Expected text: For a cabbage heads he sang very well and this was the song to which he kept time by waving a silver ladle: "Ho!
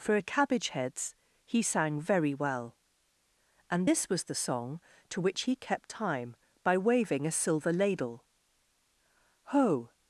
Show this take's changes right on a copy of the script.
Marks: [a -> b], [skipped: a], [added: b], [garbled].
For a cabbage heads he sang very well and this was the song to which he kept time by waving a silver ladle: "Ho!